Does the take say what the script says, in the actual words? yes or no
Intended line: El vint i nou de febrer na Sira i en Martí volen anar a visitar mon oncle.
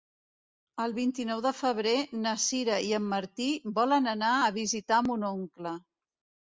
yes